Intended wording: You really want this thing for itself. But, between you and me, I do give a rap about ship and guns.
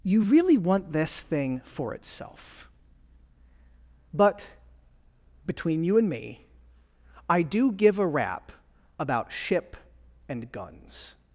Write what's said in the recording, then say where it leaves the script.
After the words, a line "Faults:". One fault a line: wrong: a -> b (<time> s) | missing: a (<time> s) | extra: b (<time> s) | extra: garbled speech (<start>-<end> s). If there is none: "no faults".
You really want this thing for itself. But, between you and me, I do give a rap about ship and guns.
Faults:
no faults